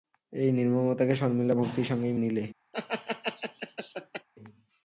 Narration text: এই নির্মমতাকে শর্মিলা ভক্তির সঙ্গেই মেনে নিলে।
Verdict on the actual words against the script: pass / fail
fail